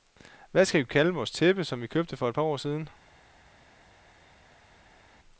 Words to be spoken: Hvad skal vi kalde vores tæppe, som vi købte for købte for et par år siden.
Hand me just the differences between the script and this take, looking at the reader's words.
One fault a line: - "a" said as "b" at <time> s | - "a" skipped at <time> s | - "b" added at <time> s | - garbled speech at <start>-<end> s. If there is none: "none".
- "købte for" skipped at 2.3 s